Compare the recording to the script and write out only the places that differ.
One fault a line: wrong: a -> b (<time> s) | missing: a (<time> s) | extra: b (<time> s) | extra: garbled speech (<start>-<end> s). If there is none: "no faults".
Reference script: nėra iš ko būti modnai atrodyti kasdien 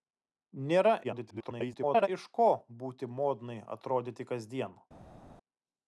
extra: garbled speech (1.0-2.1 s)